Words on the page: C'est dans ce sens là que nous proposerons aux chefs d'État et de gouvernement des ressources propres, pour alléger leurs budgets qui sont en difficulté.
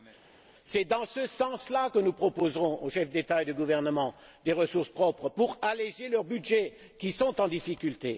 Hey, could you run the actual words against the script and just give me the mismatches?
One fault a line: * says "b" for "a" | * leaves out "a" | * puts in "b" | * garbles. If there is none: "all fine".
all fine